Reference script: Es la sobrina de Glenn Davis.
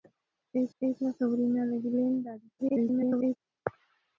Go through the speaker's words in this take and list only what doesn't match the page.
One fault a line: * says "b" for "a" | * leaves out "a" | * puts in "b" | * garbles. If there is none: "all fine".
* puts in "es"
* garbles